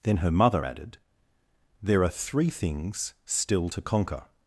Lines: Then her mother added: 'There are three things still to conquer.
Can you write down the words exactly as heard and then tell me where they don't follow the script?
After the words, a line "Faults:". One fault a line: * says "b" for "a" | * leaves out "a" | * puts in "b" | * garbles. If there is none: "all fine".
Then her mother added: 'There are three things still to conquer.
Faults:
all fine